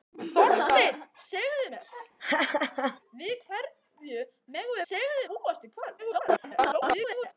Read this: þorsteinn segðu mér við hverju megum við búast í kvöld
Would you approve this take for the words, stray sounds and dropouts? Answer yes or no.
no